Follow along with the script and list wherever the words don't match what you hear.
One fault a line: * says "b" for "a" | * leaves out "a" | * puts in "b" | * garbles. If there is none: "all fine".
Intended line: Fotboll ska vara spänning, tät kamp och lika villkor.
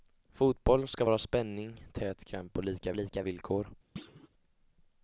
* puts in "lika"